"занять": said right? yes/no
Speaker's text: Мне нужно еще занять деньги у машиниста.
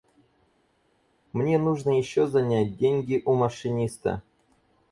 yes